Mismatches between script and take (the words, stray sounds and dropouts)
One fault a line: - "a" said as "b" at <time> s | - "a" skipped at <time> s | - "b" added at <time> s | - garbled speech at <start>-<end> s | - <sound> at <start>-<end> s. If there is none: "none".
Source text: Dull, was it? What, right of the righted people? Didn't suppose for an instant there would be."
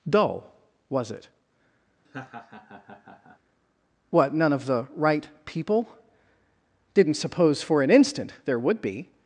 - laugh at 2.0-3.4 s
- "right" said as "none" at 4.3 s
- "righted" said as "right" at 5.0 s